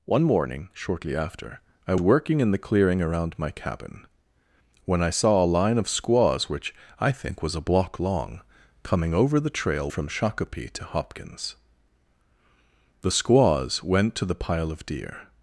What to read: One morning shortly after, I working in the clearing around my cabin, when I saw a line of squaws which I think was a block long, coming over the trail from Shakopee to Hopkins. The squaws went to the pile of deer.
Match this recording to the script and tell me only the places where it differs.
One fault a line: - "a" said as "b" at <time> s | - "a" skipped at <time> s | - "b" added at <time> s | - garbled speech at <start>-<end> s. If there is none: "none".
none